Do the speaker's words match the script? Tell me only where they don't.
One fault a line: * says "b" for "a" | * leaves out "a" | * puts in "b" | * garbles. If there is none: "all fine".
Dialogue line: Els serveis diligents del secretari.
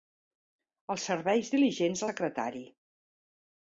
* leaves out "del"